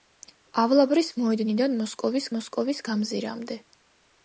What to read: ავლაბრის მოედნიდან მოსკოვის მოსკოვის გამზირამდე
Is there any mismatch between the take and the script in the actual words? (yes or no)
no